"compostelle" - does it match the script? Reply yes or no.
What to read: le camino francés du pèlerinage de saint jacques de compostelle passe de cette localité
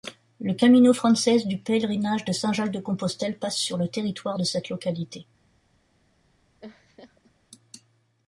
yes